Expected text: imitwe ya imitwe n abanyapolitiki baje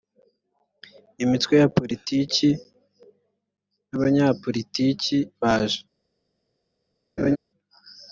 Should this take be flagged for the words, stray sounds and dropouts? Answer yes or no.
yes